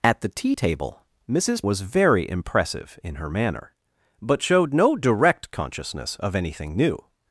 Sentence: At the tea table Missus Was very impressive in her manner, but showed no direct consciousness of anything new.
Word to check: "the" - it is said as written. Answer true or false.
true